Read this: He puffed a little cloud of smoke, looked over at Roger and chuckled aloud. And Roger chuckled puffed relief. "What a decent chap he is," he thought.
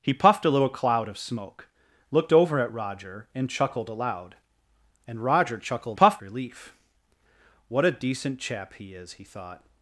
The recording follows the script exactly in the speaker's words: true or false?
true